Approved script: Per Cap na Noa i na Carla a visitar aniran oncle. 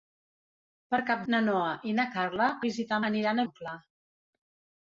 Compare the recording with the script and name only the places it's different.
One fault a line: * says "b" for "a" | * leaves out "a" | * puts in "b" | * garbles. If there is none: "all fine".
all fine